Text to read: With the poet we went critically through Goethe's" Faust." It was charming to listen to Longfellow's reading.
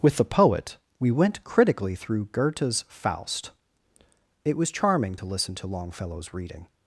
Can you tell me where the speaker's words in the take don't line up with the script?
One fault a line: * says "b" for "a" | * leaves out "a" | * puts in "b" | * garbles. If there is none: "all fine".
all fine